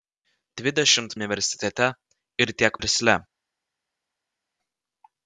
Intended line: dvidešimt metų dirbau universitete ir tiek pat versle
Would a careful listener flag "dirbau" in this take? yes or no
yes